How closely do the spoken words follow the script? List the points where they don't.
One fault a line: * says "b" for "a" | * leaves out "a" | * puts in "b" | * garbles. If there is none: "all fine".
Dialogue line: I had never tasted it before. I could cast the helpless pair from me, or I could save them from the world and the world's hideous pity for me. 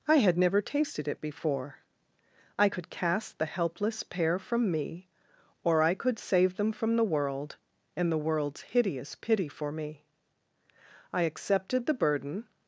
* puts in "I accepted the burden"